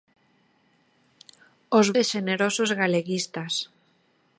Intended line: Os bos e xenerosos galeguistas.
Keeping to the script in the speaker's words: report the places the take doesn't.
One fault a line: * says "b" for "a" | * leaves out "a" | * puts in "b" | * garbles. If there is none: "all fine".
* leaves out "bos"